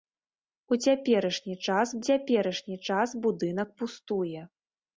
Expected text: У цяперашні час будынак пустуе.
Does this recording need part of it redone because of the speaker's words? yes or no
yes